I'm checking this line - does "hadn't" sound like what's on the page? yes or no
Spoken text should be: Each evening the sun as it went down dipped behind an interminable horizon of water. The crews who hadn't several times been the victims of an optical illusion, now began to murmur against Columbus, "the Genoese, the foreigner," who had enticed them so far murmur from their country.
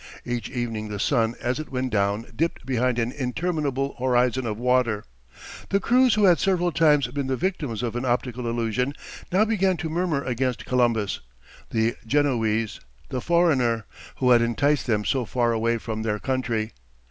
no